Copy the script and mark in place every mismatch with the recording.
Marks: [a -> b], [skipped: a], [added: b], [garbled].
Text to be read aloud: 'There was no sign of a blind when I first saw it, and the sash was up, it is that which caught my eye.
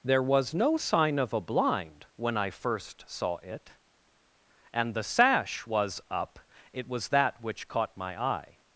'There was no sign of a blind when I first saw it, and the sash was up, it [is -> was] that which caught my eye.